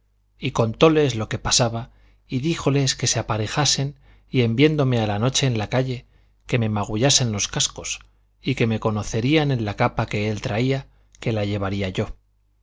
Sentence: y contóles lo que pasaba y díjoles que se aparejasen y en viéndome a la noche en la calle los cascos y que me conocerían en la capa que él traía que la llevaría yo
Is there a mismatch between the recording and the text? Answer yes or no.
yes